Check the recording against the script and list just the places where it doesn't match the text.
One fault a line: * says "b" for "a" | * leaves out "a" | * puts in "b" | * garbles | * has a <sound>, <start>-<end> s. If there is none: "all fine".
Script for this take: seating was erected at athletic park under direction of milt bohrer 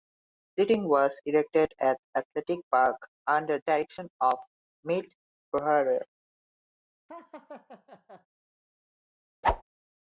* has a laugh, 7.1-8.3 s
* has a whoosh, 9.4-9.6 s